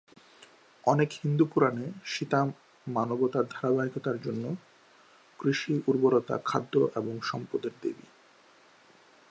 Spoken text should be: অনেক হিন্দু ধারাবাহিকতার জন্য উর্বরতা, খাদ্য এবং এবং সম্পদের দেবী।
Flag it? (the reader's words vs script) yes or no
yes